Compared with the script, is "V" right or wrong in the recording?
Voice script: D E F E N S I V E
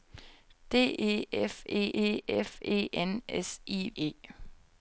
wrong